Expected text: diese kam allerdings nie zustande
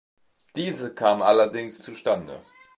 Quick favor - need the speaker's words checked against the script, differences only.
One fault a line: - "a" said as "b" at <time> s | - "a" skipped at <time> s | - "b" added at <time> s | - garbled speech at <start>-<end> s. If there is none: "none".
- "nie" skipped at 1.8 s